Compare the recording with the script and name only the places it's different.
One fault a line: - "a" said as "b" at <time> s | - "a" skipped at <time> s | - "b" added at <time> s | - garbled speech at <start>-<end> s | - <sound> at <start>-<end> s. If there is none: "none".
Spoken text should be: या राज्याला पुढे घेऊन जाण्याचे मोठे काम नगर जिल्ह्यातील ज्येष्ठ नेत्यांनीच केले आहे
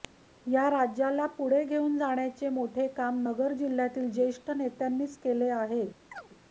- chirp at 6.1-6.3 s